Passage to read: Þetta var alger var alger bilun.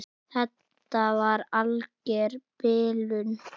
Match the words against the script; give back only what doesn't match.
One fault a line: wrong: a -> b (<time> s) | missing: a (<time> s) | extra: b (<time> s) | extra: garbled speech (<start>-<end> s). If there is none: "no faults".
missing: var alger (2.4 s)